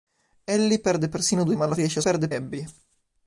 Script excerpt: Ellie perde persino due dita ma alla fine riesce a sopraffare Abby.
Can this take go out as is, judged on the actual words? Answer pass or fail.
fail